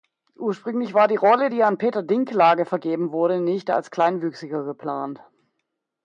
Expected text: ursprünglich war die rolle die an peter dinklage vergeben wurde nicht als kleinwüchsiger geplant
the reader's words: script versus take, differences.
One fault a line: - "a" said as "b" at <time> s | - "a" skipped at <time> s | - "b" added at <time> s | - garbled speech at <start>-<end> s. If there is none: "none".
none